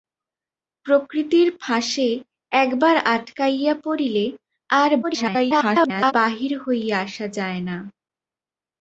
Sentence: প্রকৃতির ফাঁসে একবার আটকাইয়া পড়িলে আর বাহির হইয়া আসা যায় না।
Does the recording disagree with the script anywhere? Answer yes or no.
yes